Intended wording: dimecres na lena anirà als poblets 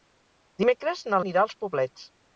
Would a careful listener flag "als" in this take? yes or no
no